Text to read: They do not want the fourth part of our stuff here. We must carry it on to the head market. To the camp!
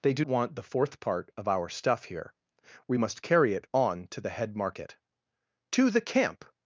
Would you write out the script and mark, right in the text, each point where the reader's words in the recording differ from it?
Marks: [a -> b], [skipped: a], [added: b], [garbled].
They do [skipped: not] want the fourth part of our stuff here. We must carry it on to the head market. To the camp!